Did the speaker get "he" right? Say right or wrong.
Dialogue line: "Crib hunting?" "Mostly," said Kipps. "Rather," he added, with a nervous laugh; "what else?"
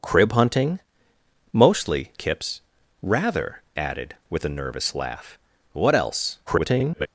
wrong